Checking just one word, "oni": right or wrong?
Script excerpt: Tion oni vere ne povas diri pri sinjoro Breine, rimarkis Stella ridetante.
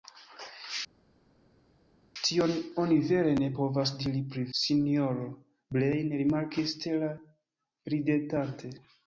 right